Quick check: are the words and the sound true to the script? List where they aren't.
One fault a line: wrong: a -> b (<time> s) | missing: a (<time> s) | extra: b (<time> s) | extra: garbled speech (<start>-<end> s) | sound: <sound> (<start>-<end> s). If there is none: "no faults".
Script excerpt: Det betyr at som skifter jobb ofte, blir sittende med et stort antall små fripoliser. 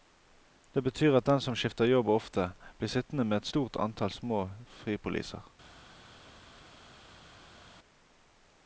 extra: den (1.2 s)